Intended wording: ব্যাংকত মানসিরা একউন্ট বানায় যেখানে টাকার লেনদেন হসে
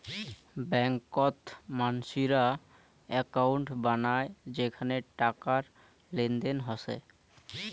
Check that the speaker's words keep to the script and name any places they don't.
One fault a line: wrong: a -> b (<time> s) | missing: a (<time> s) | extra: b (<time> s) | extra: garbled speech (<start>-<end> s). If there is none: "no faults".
no faults